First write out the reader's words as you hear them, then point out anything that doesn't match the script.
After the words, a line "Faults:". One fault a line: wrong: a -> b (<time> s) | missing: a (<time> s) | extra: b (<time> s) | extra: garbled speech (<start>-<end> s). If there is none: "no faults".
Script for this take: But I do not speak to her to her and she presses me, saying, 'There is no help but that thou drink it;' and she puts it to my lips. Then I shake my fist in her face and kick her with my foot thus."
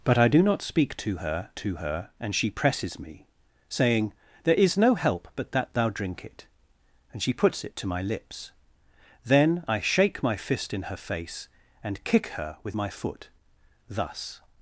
But I do not speak to her to her and she presses me, saying, 'There is no help but that thou drink it;' and she puts it to my lips. Then I shake my fist in her face and kick her with my foot thus."
Faults:
no faults